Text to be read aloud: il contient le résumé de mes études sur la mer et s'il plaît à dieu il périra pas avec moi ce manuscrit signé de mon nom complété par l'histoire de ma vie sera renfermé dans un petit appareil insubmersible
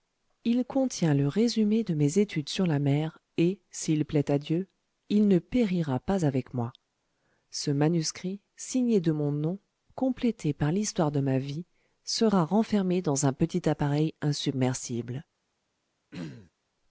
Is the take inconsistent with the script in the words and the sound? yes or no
yes